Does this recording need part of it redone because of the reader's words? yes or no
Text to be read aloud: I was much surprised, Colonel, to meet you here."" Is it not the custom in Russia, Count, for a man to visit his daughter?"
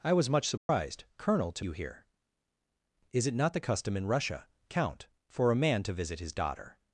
yes